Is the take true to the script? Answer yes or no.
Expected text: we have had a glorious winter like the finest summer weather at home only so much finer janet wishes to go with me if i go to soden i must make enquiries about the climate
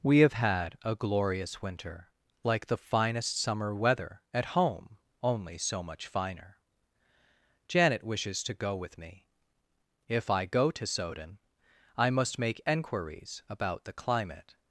yes